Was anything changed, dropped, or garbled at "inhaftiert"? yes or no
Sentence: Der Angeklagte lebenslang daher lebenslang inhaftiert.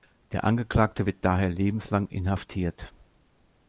no